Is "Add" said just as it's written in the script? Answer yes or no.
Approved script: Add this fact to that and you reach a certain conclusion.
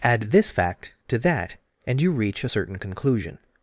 yes